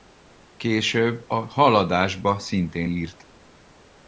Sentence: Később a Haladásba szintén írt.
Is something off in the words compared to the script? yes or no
no